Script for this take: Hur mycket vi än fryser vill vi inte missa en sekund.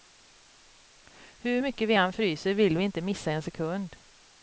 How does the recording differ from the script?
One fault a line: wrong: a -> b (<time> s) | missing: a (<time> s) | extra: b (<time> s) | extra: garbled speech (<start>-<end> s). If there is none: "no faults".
no faults